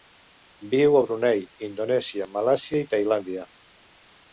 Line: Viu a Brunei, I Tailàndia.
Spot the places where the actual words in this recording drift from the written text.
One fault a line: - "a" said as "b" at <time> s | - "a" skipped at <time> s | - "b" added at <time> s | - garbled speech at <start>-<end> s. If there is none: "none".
- "Indonèsia Malàisia" added at 1.7 s